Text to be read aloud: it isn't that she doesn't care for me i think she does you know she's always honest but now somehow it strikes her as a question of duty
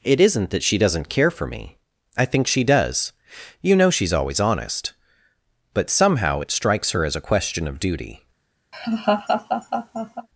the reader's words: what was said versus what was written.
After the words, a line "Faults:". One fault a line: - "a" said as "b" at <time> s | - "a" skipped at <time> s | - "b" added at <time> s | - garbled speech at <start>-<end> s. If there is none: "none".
it isn't that she doesn't care for me i think she does you know she's always honest but somehow it strikes her as a question of duty
Faults:
- "now" skipped at 5.9 s